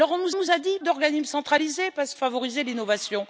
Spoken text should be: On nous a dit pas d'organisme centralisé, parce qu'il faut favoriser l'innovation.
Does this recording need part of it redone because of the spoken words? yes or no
yes